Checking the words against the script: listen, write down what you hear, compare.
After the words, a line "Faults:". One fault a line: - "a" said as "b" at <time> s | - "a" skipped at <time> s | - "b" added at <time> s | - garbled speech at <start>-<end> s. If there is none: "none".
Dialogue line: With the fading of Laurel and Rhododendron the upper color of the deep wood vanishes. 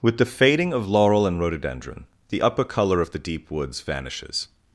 With the fading of Laurel and Rhododendron the upper color of the deep woods vanishes.
Faults:
- "wood" said as "woods" at 3.5 s